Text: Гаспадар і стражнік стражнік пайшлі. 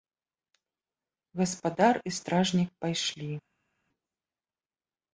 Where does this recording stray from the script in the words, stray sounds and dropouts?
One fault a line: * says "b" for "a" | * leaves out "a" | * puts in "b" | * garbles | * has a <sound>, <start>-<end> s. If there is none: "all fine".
* leaves out "стражнік"